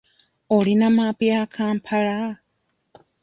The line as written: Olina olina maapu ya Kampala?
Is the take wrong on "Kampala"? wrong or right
right